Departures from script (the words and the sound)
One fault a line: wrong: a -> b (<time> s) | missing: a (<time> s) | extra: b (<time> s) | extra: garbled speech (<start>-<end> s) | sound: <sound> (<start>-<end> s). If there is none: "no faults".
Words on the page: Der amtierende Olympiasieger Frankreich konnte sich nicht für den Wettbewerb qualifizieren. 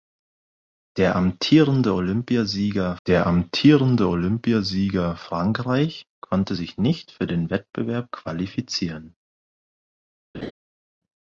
extra: der amtierende Olympiasieger (3.1 s)
sound: laugh (10.3-10.5 s)